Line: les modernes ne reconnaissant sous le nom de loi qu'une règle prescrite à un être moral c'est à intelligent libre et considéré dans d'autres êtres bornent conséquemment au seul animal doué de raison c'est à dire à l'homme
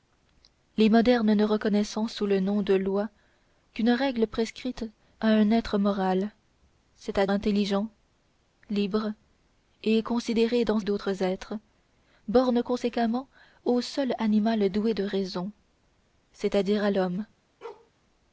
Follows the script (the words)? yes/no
yes